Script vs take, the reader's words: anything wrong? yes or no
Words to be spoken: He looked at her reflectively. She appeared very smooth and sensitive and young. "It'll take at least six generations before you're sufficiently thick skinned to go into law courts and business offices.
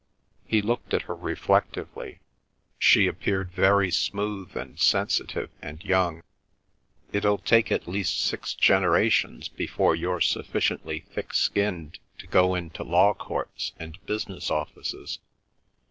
no